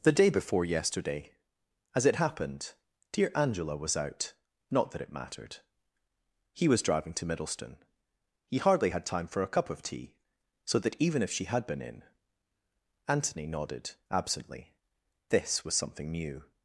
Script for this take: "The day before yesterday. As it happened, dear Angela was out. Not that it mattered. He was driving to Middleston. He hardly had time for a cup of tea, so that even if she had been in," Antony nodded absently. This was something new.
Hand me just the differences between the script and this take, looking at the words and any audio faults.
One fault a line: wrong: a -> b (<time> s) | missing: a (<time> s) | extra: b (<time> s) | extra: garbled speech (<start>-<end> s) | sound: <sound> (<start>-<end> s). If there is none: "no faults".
no faults